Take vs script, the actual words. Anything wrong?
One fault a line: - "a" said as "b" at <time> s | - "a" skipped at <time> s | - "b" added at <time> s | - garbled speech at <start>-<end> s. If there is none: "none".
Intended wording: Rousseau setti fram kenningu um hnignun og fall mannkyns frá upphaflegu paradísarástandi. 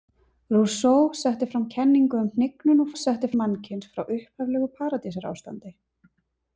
- "fall" said as "setti" at 3.0 s